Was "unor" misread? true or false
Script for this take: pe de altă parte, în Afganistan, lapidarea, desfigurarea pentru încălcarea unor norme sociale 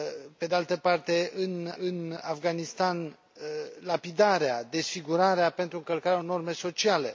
true